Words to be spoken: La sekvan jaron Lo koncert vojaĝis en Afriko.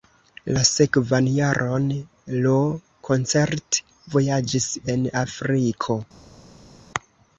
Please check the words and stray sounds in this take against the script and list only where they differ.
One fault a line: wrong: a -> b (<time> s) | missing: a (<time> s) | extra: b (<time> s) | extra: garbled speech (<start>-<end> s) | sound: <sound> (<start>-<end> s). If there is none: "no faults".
no faults